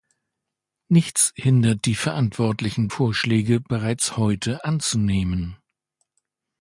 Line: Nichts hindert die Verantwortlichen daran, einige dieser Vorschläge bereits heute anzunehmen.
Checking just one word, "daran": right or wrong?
wrong